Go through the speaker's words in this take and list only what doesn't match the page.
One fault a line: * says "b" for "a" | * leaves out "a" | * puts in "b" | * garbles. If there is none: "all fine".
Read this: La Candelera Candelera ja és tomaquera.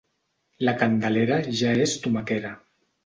* leaves out "Candelera"